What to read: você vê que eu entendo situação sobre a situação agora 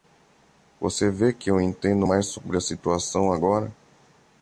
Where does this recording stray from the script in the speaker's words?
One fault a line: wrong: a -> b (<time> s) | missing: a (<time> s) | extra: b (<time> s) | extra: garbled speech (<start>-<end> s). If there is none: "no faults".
wrong: situação -> mais (2.0 s)